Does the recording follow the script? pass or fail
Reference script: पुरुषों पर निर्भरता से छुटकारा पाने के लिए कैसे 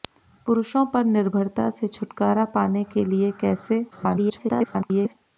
fail